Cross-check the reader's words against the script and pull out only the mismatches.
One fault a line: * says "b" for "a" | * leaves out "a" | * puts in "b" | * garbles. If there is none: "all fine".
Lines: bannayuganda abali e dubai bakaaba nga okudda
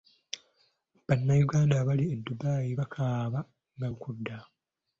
all fine